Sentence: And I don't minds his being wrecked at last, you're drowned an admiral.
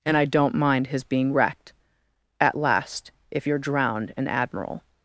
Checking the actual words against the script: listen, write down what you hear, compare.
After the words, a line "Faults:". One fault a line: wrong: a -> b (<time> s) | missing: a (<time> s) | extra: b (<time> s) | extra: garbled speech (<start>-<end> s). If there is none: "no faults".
And I don't mind his being wrecked at last, if you're drowned an admiral.
Faults:
wrong: minds -> mind (0.6 s)
extra: if (3.3 s)